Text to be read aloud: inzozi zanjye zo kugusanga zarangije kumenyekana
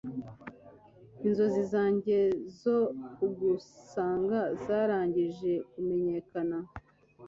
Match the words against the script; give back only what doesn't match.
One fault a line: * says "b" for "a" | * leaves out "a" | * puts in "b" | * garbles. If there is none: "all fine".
all fine